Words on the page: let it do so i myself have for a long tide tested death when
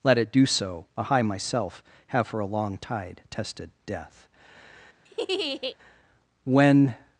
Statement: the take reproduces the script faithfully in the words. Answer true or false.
true